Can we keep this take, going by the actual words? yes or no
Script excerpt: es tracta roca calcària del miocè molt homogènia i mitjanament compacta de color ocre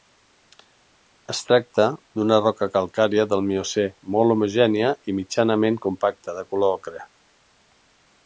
no